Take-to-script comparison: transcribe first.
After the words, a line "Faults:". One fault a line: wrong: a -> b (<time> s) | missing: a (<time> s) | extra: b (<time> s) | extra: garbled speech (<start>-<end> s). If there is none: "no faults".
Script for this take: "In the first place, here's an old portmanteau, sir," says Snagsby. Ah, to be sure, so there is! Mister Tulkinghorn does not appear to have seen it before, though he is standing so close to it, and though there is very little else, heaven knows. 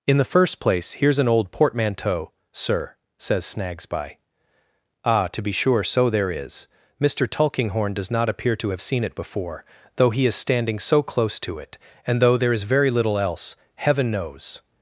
"In the first place, here's an old portmanteau, sir," says Snagsby. Ah, to be sure, so there is! Mister Tulkinghorn does not appear to have seen it before, though he is standing so close to it, and though there is very little else, heaven knows.
Faults:
no faults